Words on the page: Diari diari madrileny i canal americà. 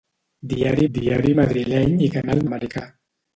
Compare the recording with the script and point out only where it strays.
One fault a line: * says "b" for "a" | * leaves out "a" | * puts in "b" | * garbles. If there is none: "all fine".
all fine